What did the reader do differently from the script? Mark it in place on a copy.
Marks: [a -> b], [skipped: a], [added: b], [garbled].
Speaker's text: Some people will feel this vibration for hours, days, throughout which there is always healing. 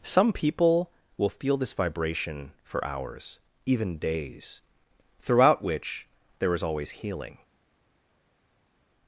Some people will feel this vibration for hours, [added: even] days, throughout which there is always healing.